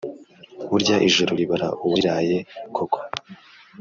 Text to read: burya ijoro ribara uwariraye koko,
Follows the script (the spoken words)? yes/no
yes